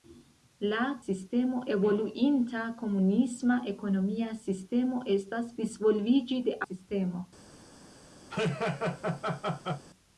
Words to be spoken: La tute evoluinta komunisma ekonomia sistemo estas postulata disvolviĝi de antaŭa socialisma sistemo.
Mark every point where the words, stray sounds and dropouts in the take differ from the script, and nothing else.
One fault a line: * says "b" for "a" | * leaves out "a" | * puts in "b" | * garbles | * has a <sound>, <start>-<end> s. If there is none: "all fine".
* says "sistemo" for "tute"
* leaves out "postulata"
* leaves out "antaŭa socialisma"
* has a laugh, 8.3-9.8 s